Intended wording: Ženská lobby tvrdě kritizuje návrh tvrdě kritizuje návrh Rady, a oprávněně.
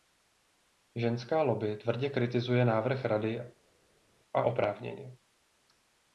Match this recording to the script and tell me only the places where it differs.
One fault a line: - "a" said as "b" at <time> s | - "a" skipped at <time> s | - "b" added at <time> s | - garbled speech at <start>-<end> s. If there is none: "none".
- "tvrdě kritizuje návrh" skipped at 3.0 s